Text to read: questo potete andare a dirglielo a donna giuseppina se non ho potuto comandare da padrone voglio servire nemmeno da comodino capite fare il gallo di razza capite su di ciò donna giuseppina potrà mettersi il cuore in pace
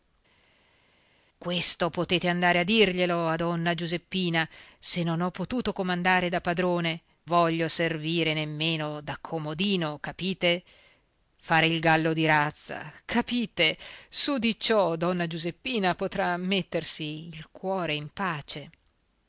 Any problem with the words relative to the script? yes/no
no